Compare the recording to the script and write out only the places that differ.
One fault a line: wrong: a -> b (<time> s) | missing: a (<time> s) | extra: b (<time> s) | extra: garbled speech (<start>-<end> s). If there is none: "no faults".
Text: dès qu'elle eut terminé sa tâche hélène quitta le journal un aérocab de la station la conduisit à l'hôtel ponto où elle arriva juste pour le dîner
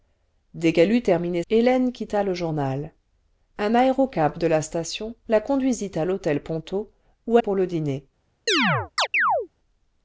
missing: sa tâche (1.4 s)
missing: elle arriva juste (7.4 s)